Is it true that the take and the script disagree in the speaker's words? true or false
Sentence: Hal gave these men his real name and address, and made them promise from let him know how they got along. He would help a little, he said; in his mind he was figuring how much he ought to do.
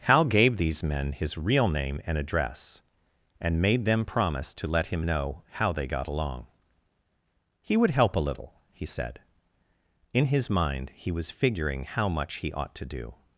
true